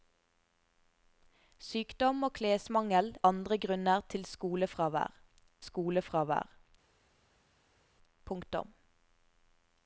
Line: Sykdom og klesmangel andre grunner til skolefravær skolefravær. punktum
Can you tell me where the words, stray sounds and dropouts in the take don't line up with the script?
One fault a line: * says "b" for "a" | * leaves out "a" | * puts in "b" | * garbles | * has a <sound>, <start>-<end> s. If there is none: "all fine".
all fine